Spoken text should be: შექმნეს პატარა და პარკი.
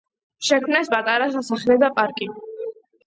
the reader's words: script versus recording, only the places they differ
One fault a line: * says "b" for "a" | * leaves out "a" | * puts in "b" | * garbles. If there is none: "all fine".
* puts in "სასახლე"